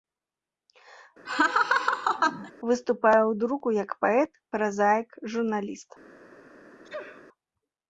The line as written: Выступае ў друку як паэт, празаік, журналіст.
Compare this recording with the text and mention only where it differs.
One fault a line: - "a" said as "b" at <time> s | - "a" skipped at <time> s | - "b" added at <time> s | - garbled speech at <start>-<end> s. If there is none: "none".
none